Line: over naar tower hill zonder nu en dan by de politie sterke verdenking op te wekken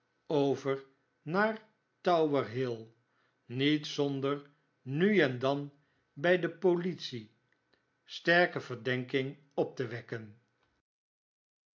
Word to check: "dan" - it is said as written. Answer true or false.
true